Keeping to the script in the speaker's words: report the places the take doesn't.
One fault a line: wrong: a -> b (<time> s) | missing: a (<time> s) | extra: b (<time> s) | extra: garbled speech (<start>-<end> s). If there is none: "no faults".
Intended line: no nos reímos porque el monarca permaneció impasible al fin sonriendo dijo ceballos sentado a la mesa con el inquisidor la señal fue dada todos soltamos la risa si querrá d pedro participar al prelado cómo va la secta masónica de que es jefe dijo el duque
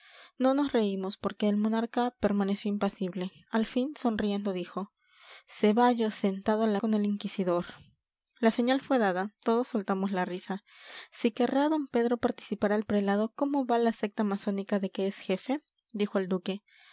missing: mesa (6.8 s)